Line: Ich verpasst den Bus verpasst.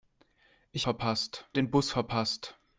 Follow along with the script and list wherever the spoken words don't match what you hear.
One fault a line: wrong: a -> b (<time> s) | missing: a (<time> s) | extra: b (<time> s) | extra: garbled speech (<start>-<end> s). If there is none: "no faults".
no faults